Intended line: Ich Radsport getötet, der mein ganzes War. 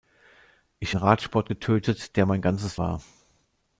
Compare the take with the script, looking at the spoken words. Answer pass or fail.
pass